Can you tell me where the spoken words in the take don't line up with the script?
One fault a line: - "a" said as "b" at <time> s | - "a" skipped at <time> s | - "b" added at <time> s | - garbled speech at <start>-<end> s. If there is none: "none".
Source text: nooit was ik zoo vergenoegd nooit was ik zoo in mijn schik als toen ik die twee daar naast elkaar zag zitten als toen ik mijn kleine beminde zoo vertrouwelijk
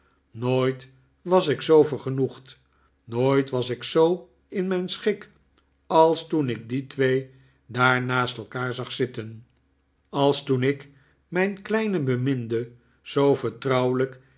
none